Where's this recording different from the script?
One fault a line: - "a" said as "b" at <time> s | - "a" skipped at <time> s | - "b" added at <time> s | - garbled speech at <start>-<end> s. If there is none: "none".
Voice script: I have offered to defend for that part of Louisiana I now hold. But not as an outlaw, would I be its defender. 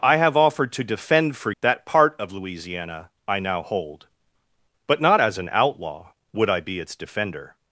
none